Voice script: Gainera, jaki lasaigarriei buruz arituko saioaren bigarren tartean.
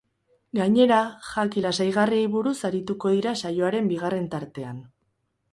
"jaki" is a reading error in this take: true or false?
false